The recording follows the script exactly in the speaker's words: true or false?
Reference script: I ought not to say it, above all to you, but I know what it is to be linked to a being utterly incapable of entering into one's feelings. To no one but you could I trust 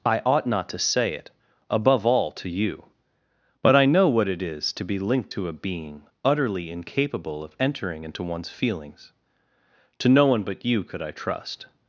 true